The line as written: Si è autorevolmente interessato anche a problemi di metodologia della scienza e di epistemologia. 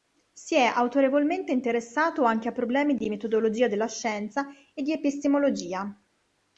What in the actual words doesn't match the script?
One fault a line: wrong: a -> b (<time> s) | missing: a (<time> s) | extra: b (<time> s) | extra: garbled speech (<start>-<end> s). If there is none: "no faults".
no faults